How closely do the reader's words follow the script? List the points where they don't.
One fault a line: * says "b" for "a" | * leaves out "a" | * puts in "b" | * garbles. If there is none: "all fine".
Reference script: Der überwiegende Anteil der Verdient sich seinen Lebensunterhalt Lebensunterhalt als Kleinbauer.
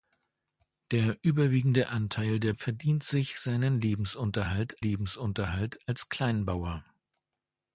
all fine